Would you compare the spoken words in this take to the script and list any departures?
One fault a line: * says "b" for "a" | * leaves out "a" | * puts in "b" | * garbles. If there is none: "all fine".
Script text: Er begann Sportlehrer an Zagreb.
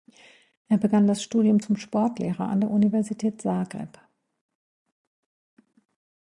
* puts in "das Studium zum"
* puts in "der Universität"